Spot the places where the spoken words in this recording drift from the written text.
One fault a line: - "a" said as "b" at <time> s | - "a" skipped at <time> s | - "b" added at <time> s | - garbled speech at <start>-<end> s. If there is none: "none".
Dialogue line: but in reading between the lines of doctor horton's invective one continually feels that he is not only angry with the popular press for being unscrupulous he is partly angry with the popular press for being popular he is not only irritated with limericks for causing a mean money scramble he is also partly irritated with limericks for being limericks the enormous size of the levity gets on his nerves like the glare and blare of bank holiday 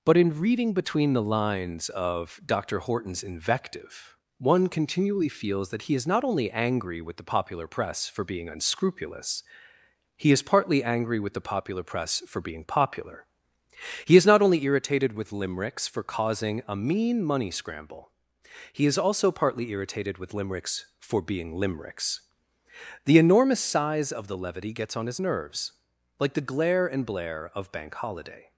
none